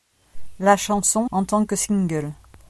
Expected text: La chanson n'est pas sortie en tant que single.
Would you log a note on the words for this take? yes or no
yes